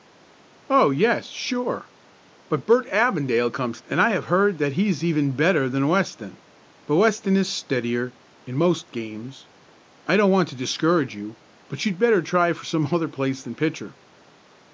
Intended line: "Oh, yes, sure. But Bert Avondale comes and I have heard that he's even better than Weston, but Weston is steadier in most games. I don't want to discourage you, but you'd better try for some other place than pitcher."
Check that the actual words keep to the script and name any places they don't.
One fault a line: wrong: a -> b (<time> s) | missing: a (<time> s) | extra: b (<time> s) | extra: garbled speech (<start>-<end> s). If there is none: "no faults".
no faults